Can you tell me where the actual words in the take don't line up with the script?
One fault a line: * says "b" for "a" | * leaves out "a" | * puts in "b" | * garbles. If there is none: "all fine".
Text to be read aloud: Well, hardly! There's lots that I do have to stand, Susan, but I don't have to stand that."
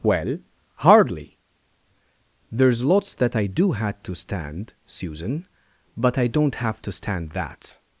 * says "had" for "have"